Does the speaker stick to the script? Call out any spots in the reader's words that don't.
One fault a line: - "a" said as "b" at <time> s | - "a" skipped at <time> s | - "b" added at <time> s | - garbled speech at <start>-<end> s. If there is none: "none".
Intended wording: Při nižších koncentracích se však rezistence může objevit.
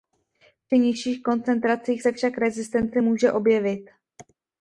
none